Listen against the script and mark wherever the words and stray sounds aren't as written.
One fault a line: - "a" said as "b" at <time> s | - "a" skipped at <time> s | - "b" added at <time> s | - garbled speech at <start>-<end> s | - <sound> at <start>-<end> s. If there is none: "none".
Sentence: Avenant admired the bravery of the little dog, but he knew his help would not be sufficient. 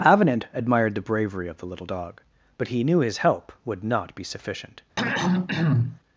- throat clearing at 5.0-6.0 s